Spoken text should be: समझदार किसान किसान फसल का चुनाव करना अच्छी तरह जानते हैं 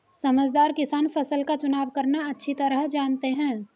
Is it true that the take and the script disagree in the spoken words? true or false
true